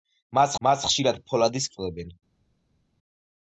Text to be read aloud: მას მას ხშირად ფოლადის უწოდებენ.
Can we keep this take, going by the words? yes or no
yes